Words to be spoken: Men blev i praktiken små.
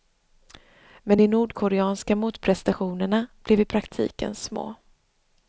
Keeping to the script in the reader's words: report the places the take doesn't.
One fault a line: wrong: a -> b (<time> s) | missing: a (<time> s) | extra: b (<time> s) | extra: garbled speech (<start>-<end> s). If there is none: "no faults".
extra: de nordkoreanska motprestationerna (1.2 s)